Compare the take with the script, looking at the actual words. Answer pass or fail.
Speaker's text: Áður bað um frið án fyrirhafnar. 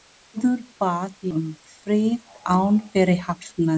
pass